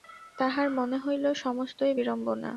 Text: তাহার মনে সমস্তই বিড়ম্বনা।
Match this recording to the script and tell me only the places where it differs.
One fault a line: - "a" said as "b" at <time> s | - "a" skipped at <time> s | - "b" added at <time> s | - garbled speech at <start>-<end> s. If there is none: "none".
- "হইল" added at 1.0 s